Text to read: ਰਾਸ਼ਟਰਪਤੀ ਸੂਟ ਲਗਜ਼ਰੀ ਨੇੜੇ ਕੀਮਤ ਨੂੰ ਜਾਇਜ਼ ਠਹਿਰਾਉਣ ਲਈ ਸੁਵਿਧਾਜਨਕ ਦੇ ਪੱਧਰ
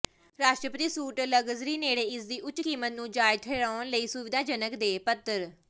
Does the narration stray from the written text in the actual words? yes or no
yes